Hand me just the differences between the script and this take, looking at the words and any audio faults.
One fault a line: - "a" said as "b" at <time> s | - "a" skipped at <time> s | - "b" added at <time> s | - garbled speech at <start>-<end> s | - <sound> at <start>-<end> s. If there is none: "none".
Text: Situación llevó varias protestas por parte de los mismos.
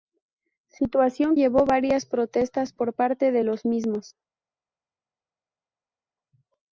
none